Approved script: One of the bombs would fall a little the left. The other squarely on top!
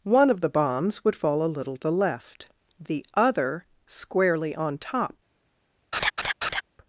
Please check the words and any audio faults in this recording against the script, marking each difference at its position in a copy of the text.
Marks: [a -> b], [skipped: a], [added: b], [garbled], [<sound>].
One of the bombs would fall a little the left. The other squarely on top! [laugh]